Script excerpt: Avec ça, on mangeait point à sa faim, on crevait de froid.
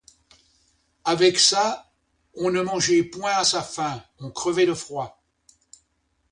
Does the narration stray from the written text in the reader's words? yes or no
yes